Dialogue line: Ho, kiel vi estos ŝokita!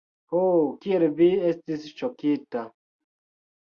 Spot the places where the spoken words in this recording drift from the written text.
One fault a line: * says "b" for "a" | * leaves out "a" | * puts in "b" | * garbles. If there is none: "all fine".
* says "estis" for "estos"